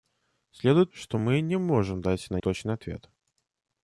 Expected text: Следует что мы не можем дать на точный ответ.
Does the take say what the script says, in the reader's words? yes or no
yes